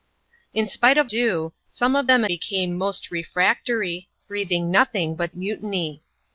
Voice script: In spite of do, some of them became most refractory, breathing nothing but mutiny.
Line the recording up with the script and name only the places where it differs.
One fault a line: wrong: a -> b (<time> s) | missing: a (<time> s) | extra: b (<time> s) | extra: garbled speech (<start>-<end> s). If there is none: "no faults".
no faults